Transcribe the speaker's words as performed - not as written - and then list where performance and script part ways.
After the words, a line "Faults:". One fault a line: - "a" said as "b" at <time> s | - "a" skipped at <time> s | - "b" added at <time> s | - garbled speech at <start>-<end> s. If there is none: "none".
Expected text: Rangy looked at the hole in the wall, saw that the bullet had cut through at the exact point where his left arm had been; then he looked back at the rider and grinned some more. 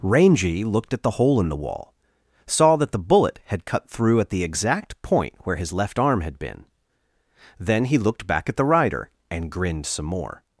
Rangy looked at the hole in the wall, saw that the bullet had cut through at the exact point where his left arm had been; then he looked back at the rider and grinned some more.
Faults:
none